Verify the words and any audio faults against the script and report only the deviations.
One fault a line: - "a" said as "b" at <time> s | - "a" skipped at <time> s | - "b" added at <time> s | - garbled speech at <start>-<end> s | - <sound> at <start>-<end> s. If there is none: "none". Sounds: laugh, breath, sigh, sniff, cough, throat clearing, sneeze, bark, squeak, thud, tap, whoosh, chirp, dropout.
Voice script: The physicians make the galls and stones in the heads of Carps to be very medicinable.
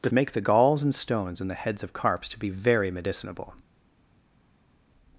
- "physicians" skipped at 0.1 s